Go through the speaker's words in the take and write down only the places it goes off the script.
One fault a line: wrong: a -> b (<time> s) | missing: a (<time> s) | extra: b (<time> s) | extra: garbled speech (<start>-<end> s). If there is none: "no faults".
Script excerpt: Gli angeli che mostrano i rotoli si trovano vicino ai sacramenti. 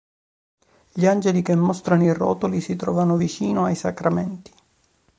no faults